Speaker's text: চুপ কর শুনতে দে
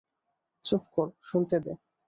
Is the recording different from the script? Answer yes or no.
no